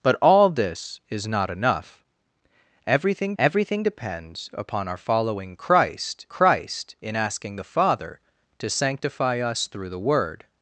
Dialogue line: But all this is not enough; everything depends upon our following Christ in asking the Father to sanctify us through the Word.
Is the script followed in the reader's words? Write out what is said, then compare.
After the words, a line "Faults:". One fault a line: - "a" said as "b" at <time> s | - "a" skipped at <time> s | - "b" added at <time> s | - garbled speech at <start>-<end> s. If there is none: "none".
But all this is not enough; everything everything depends upon our following Christ Christ in asking the Father to sanctify us through the Word.
Faults:
- "everything" added at 3.4 s
- "Christ" added at 6.3 s